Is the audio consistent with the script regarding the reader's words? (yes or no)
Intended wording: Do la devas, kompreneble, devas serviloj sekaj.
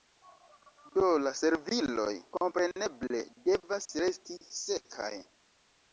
no